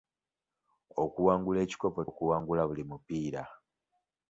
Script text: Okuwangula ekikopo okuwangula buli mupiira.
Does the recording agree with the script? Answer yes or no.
yes